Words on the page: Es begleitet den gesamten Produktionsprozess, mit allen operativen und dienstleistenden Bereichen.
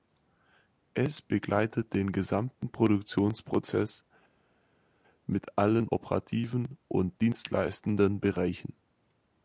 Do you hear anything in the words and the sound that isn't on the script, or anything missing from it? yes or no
no